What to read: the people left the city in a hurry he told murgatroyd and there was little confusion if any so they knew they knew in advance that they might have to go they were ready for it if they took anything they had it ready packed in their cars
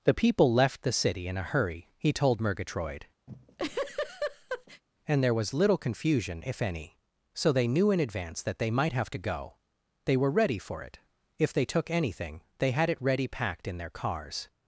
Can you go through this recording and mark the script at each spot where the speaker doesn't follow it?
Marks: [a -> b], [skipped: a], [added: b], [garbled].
the people left the city in a hurry he told murgatroyd and there was little confusion if any so they knew [skipped: they knew] in advance that they might have to go they were ready for it if they took anything they had it ready packed in their cars